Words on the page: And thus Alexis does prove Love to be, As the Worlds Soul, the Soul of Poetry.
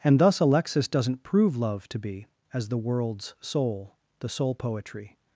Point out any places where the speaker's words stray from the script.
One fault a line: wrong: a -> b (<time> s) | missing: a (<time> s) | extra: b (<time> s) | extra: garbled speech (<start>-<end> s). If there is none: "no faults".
wrong: does -> doesn't (0.9 s)
missing: of (4.5 s)